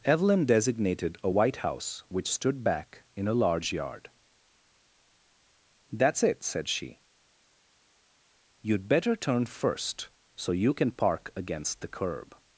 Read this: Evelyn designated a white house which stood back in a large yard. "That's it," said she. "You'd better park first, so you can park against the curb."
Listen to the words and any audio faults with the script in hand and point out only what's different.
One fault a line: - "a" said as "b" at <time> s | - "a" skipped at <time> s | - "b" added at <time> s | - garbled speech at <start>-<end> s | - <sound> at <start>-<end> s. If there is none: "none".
- "park" said as "turn" at 9.2 s